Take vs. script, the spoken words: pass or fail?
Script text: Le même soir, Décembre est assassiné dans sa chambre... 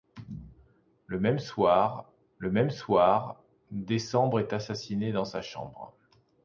fail